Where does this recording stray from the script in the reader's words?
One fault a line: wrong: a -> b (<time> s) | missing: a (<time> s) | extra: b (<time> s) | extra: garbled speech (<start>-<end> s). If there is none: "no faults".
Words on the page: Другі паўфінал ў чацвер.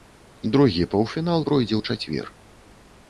extra: пройдзе (1.5 s)